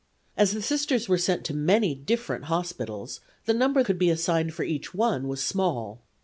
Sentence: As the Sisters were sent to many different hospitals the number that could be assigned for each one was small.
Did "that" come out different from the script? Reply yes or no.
yes